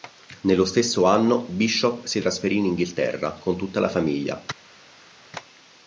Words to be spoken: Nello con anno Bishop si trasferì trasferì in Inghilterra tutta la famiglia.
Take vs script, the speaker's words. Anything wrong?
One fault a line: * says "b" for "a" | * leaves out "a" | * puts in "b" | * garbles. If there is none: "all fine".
* says "stesso" for "con"
* leaves out "trasferì"
* puts in "con"